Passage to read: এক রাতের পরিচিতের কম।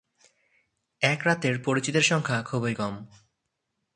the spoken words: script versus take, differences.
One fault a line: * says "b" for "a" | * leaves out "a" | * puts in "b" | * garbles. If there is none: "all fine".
* puts in "সংখ্যা খুবই"